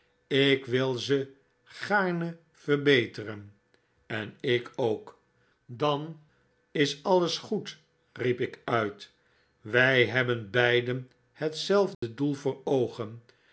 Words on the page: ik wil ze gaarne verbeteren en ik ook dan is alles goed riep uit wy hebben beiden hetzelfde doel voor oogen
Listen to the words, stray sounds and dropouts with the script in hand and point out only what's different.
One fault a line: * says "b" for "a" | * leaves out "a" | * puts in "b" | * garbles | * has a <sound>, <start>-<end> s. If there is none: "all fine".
* puts in "ik"
* has a dropout, 11.9-12.0 s